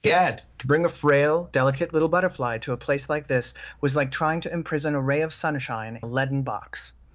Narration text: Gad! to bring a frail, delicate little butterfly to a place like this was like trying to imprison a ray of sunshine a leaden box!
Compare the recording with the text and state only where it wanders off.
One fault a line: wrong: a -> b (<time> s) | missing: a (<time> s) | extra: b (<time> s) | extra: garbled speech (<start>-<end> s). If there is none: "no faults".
no faults